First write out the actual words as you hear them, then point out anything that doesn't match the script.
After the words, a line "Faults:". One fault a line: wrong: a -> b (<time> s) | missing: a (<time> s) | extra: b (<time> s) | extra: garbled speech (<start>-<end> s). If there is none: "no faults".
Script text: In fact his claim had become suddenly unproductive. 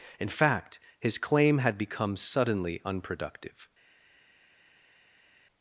In fact his claim had become suddenly unproductive.
Faults:
no faults